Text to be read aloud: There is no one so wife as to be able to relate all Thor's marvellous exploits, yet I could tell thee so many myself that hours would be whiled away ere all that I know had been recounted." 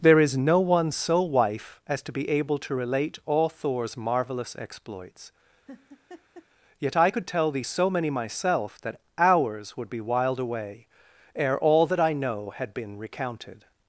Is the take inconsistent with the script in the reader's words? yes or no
no